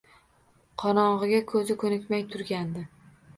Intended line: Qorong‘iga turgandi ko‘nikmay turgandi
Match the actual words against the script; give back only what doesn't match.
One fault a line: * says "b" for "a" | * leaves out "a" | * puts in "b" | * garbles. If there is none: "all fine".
* says "ko‘zi" for "turgandi"